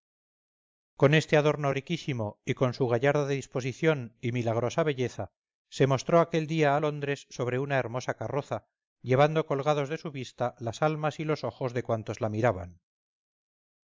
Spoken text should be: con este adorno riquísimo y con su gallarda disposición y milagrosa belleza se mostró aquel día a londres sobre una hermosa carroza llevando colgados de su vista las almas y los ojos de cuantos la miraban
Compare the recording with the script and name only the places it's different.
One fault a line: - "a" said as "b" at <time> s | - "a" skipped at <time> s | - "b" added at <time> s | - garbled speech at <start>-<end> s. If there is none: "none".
none